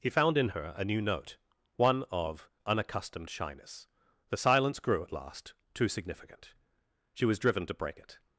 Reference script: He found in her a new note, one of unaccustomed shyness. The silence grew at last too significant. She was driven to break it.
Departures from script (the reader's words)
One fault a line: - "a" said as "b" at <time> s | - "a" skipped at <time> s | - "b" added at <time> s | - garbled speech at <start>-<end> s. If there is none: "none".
none